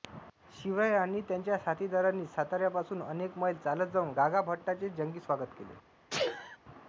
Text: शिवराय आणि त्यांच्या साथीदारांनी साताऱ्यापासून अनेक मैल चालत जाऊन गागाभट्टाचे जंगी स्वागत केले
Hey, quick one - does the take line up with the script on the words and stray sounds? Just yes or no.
no